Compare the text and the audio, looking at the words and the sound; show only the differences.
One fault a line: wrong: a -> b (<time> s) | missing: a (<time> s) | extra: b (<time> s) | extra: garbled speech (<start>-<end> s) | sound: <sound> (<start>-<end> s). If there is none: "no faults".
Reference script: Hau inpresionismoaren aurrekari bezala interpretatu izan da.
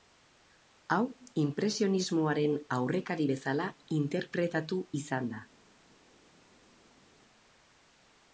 no faults